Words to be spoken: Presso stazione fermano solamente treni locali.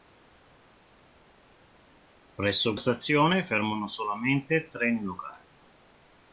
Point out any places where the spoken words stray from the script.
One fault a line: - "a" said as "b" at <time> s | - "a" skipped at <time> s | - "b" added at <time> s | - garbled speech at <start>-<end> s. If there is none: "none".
none